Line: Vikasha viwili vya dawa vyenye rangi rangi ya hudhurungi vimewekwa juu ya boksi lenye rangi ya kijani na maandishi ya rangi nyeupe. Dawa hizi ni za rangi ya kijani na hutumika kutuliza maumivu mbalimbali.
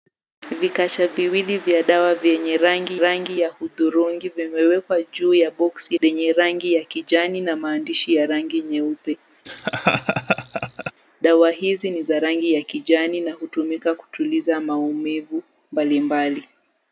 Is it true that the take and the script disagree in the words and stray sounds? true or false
true